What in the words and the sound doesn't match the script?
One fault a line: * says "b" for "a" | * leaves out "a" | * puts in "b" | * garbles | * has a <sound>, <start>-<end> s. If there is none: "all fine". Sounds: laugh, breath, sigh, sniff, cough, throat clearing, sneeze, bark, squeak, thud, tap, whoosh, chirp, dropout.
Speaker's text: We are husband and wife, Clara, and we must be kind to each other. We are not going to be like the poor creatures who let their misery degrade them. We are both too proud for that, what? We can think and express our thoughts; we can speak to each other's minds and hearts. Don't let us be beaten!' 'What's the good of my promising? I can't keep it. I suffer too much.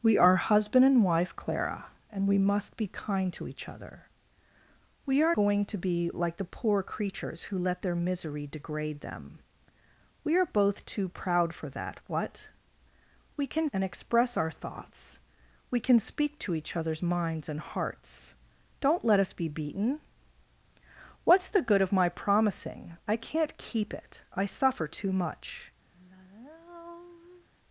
* leaves out "not"
* leaves out "think"
* has a sigh, 25.9-27.5 s